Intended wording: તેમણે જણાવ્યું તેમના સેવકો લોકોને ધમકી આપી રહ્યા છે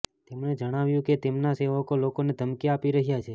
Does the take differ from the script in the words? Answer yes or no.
yes